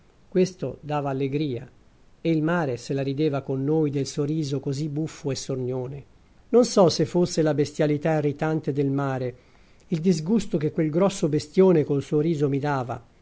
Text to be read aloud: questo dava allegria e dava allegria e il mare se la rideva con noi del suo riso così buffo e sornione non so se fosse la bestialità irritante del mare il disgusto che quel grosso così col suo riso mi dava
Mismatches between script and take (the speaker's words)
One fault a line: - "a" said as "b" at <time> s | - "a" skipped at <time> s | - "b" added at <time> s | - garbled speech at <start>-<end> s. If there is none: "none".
- "dava allegria e" skipped at 2.3 s
- "così" said as "bestione" at 11.3 s